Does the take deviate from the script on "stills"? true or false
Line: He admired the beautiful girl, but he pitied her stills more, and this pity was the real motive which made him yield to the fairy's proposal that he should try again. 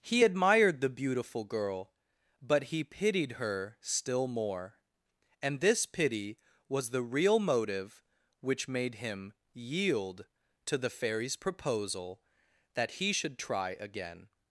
true